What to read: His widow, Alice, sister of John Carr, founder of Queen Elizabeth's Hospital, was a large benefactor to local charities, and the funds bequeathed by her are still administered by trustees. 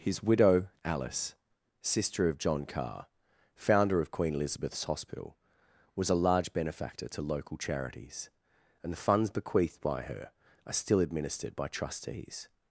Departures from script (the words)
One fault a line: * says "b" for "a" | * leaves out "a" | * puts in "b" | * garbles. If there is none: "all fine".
all fine